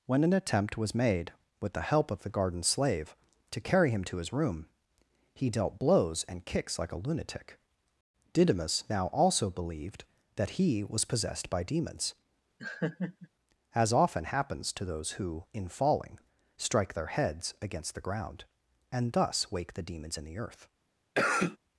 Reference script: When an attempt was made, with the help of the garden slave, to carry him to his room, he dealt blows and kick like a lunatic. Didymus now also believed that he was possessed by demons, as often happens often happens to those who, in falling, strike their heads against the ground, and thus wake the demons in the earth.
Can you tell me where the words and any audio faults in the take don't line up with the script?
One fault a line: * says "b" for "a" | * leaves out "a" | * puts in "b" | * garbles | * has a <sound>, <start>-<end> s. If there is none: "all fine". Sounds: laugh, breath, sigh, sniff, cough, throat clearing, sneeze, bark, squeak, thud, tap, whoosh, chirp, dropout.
* says "kicks" for "kick"
* has a laugh, 12.6-13.3 s
* leaves out "often happens"
* has a cough, 21.1-21.6 s